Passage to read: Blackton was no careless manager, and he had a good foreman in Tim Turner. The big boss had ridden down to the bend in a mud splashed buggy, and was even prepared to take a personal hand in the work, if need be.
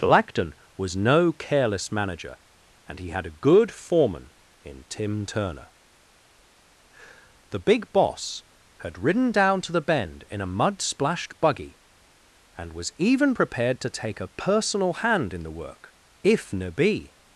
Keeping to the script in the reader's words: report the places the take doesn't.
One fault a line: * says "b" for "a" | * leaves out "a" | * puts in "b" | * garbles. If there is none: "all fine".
* says "ne" for "need"